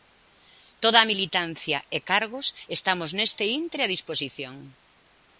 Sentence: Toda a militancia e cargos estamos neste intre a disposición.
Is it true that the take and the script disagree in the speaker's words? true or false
false